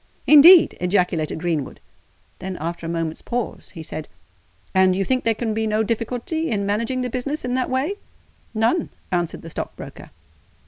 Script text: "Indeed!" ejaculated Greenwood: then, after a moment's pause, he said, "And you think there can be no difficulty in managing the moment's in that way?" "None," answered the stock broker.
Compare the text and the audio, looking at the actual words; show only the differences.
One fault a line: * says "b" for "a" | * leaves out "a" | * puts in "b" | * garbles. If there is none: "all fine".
* says "business" for "moment's"